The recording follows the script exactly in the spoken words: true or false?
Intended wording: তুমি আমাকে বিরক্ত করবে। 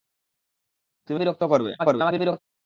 false